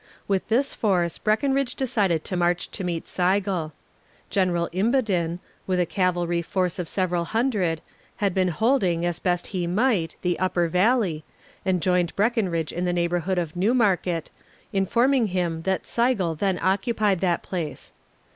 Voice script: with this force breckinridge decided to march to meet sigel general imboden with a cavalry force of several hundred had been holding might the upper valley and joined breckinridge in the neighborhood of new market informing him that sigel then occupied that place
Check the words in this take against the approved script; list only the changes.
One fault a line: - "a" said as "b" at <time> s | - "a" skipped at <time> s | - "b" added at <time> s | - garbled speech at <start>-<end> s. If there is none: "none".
- "as best he" added at 9.0 s